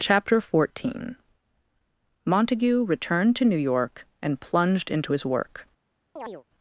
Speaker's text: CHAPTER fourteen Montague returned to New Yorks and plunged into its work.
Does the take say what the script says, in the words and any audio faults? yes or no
no